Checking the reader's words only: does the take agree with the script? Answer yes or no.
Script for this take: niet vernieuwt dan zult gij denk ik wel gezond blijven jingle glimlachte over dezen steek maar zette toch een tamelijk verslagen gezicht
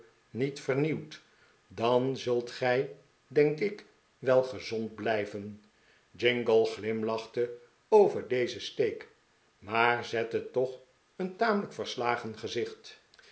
yes